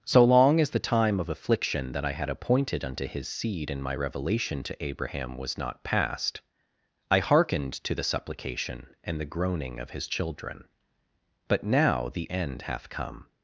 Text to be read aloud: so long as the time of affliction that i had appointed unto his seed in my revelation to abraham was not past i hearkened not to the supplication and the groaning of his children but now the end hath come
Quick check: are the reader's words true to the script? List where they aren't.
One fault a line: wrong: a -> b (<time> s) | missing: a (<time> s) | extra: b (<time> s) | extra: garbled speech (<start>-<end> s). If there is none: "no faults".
missing: not (7.7 s)